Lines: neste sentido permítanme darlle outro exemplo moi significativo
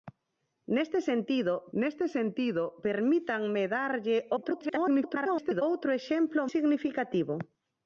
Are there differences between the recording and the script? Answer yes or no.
yes